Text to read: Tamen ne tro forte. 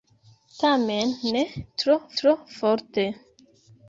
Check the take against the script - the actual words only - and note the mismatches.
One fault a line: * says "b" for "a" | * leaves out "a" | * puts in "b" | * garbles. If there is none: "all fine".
* puts in "tro"